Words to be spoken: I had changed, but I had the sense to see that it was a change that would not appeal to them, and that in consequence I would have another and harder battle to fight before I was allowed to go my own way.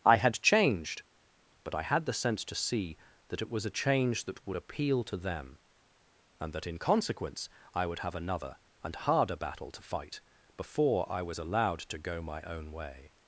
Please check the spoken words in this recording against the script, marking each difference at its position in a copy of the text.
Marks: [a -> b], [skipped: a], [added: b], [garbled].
I had changed, but I had the sense to see that it was a change that would [skipped: not] appeal to them, and that in consequence I would have another and harder battle to fight before I was allowed to go my own way.